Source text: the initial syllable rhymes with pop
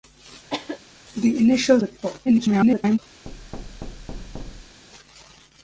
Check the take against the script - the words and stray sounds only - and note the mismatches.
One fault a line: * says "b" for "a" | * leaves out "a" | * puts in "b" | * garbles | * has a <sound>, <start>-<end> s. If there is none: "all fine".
* has a cough, 0.5-0.8 s
* leaves out "syllable rhymes"
* garbles
* has a thud, 3.3-4.8 s